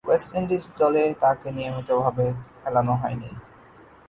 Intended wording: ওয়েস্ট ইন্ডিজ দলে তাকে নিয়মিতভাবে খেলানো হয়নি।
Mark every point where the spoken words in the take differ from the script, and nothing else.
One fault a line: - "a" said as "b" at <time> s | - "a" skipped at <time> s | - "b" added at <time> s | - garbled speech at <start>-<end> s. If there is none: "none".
none